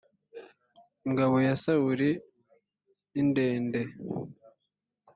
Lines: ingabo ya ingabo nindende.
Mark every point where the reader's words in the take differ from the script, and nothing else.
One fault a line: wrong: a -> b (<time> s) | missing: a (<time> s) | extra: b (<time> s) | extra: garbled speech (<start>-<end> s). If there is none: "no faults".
wrong: ingabo -> sawuli (1.6 s)